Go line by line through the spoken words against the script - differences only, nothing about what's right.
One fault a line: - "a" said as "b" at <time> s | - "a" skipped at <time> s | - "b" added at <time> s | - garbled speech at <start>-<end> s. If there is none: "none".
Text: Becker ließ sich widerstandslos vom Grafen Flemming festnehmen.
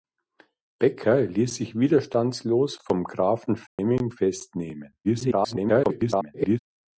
- garbled speech at 5.0-6.6 s